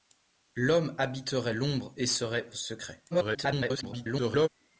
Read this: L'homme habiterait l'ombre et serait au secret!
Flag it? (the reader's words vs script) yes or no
yes